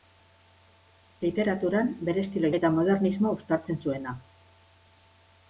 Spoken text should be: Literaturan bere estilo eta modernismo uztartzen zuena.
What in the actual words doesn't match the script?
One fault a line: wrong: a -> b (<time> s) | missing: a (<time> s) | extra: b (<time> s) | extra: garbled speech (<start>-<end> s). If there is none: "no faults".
no faults